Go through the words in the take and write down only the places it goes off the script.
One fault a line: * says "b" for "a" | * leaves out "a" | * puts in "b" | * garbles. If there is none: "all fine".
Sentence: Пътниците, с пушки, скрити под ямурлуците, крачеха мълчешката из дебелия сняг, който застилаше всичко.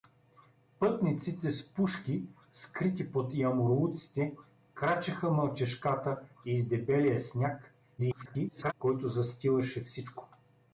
* garbles